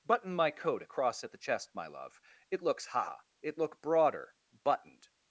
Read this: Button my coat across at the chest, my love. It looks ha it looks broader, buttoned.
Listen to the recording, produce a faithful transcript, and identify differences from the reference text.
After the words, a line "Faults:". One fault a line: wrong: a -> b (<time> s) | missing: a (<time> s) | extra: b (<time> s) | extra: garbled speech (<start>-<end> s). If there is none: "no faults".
Button my coat across at the chest, my love. It looks ha it look broader, buttoned.
Faults:
wrong: looks -> look (3.6 s)